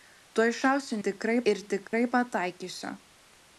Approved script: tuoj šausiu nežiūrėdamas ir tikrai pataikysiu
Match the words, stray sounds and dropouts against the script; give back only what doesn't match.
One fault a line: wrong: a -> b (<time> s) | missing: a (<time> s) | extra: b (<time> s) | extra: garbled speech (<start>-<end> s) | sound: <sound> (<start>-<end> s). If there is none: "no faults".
wrong: nežiūrėdamas -> tikrai (1.1 s)
sound: dropout (1.9-1.9 s)